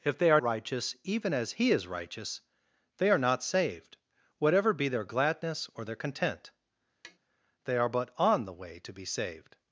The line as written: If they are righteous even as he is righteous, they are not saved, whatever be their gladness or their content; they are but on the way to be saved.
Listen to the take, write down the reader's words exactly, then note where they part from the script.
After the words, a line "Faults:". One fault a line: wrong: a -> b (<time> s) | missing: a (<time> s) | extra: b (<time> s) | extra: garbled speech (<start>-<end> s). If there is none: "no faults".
If they are righteous even as he is righteous, they are not saved, whatever be their gladness or their content; they are but on the way to be saved.
Faults:
no faults